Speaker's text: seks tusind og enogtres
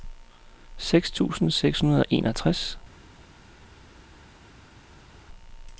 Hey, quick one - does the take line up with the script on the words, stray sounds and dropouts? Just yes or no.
no